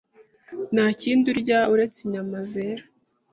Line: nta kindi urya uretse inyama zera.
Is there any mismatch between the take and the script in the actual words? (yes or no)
no